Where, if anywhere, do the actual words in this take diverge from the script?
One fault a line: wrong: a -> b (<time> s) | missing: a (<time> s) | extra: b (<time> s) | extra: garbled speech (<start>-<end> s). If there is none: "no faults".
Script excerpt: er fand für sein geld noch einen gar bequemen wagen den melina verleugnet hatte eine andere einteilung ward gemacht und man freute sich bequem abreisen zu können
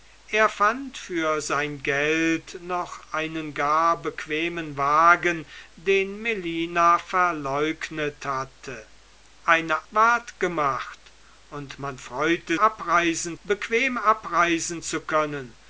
missing: andere einteilung (9.9 s)
wrong: sich -> abreisen (12.5 s)